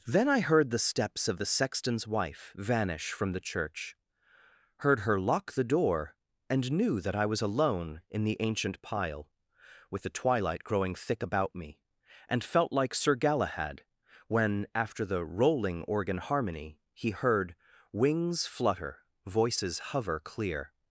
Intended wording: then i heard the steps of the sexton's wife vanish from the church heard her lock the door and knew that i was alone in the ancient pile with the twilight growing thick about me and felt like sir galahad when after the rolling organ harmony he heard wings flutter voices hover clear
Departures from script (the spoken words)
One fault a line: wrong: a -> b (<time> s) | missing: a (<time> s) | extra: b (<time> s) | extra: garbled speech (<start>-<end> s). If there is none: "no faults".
no faults